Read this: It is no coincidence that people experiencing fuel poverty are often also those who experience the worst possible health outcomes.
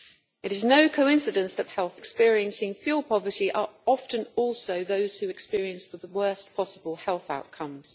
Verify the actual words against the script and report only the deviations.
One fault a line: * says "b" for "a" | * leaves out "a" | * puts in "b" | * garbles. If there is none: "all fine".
* says "health" for "people"
* puts in "the"